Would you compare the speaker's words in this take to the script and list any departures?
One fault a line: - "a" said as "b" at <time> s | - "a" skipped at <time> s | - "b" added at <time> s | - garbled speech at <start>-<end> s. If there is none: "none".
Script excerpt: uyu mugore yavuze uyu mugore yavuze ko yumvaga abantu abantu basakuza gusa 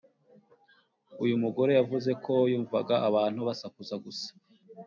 - "uyu mugore yavuze" skipped at 2.1 s
- "abantu" skipped at 3.4 s